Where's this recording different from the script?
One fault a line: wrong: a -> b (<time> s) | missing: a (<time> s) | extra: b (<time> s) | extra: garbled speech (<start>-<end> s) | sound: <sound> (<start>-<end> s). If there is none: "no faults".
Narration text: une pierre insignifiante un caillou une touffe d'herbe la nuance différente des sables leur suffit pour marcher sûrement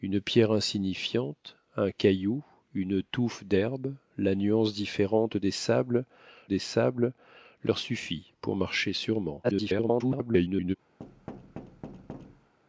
extra: des sables (6.4 s)
extra: garbled speech (9.4-10.8 s)
sound: thud (11.0-12.5 s)